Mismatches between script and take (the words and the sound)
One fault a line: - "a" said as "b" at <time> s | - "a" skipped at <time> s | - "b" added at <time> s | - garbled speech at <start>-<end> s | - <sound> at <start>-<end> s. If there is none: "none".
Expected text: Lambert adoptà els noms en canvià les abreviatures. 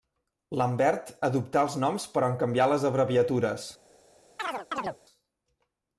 - "però" added at 2.1 s
- chirp at 4.4-5.0 s